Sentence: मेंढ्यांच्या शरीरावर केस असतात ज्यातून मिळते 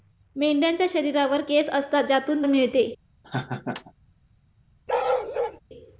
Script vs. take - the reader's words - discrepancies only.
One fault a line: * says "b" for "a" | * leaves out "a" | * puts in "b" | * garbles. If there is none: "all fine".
all fine